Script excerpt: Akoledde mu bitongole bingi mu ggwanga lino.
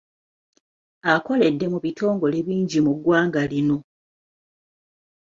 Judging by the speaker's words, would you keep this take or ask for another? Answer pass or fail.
pass